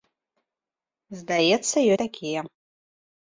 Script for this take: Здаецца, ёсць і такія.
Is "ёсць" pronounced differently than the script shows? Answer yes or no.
yes